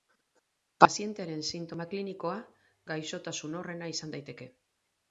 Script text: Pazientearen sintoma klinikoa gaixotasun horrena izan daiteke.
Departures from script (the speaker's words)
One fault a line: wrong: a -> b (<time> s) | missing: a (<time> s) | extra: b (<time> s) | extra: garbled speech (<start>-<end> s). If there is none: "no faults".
no faults